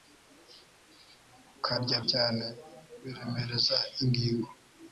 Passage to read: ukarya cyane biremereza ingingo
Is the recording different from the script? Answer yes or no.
no